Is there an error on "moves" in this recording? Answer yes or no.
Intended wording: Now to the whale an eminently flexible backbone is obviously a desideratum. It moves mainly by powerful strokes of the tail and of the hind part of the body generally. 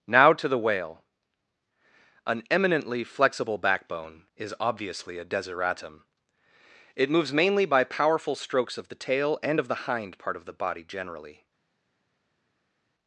no